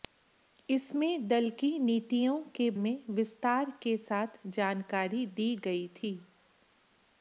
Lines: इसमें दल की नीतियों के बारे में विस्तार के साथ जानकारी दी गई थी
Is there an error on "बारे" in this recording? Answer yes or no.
yes